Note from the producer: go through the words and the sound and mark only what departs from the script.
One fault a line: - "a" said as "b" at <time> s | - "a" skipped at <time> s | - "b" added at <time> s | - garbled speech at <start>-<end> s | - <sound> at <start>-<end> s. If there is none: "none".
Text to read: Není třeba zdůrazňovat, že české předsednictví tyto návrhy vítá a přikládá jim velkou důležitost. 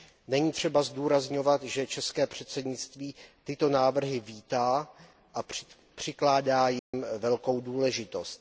- dropout at 6.8-6.9 s